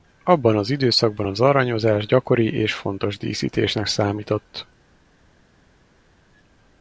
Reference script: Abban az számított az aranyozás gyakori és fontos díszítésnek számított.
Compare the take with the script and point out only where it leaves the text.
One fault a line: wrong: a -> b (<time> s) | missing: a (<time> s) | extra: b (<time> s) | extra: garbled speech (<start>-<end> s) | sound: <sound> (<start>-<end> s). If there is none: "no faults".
wrong: számított -> időszakban (0.7 s)